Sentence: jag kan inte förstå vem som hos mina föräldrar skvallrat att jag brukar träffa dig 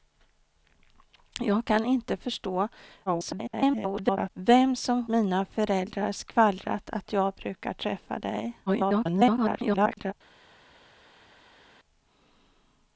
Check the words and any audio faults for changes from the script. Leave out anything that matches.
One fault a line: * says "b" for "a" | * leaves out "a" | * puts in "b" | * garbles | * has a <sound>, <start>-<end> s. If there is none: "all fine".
* garbles
* leaves out "hos"
* garbles